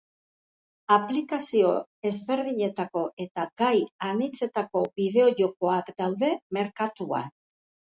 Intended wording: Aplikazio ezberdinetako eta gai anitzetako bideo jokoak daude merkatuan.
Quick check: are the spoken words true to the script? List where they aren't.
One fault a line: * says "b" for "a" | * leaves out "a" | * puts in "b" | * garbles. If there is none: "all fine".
all fine